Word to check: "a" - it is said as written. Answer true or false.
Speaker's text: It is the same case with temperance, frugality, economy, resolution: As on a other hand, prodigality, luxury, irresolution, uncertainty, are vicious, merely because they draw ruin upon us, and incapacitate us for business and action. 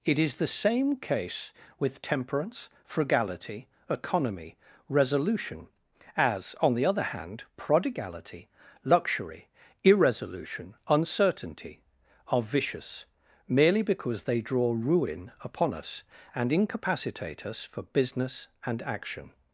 false